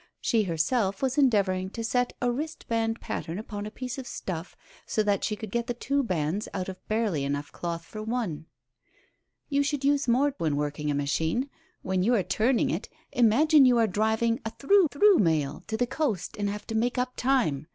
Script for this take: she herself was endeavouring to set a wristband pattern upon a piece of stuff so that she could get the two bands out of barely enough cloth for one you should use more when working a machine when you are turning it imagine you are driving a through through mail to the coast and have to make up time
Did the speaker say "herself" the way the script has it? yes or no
yes